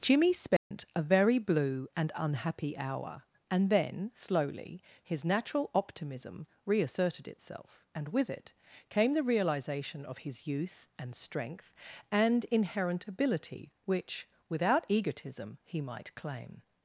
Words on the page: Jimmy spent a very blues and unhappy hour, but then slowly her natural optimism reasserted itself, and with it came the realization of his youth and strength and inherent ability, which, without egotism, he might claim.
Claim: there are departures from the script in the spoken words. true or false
true